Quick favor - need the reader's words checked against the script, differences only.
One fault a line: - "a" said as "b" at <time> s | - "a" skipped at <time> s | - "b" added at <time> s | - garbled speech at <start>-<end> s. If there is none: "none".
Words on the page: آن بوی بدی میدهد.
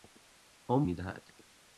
- "بوی بدی" skipped at 0.9 s